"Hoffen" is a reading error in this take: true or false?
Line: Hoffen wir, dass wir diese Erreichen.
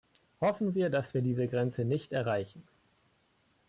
false